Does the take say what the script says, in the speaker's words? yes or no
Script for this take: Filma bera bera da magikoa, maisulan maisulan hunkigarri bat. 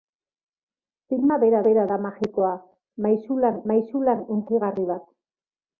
yes